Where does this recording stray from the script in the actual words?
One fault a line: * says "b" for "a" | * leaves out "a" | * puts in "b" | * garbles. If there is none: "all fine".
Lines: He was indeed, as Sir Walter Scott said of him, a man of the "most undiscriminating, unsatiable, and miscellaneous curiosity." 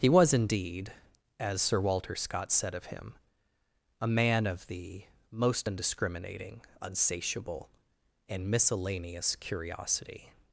all fine